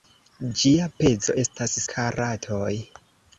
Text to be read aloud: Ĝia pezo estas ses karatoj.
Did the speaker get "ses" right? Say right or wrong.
wrong